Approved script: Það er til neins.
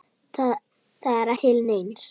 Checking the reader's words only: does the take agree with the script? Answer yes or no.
yes